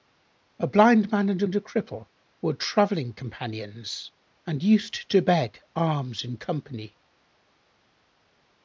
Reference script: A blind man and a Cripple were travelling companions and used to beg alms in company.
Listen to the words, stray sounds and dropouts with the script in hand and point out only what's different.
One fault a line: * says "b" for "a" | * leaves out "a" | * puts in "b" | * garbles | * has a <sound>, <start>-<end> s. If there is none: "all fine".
* puts in "and"